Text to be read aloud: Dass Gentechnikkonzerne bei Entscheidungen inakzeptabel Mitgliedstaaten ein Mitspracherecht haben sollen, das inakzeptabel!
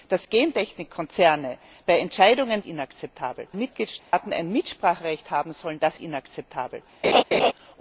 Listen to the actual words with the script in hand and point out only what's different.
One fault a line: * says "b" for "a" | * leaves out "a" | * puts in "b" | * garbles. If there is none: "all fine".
all fine